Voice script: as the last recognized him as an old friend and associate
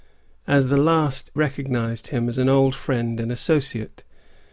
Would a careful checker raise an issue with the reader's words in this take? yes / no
no